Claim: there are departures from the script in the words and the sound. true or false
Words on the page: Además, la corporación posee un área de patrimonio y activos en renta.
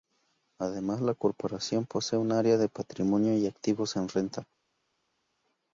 false